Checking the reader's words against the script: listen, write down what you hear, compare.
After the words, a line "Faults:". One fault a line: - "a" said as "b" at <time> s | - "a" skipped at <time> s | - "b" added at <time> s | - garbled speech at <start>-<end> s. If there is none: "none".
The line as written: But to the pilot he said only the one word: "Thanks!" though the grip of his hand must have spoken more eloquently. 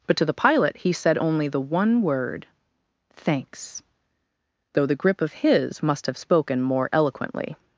But to the pilot he said only the one word: "Thanks!" though the grip of his must have spoken more eloquently.
Faults:
- "hand" skipped at 5.8 s